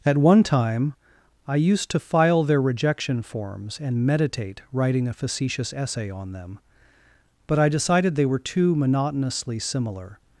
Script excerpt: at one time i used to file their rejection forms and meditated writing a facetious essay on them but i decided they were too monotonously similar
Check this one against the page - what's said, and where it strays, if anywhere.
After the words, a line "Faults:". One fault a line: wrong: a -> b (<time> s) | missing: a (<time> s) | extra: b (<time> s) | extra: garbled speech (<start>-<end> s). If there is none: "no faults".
at one time i used to file their rejection forms and meditate writing a facetious essay on them but i decided they were too monotonously similar
Faults:
wrong: meditated -> meditate (4.0 s)